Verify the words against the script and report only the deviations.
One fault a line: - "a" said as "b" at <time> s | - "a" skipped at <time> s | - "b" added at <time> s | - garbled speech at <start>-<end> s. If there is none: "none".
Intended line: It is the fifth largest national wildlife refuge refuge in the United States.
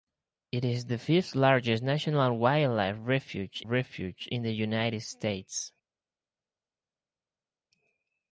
none